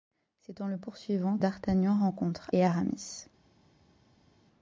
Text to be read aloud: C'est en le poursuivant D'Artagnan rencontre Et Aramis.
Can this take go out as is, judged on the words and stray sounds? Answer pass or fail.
pass